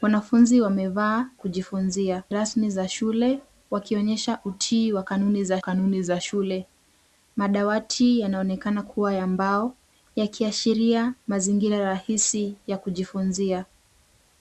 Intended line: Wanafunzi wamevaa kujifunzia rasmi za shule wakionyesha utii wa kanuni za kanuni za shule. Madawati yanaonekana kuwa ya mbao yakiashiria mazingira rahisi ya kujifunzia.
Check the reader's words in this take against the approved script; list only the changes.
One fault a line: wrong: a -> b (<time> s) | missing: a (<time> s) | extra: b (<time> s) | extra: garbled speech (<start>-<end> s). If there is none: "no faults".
no faults